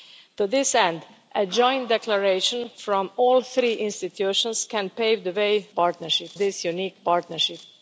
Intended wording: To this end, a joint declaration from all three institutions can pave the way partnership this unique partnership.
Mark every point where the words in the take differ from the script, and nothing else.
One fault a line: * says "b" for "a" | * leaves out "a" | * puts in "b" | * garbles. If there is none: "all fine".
all fine